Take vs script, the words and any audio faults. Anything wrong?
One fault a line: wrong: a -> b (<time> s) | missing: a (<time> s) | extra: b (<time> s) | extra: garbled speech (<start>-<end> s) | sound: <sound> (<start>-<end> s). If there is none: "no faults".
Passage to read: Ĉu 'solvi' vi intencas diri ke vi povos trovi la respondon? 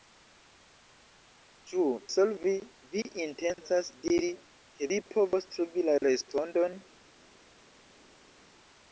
no faults